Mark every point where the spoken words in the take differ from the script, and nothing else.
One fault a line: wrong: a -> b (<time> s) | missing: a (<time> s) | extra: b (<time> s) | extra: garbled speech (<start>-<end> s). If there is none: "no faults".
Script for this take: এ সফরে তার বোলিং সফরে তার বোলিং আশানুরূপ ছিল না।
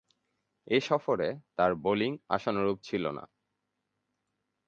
missing: সফরে তার বোলিং (2.1 s)